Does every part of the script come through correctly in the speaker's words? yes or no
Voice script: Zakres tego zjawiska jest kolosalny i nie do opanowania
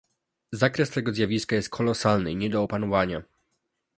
yes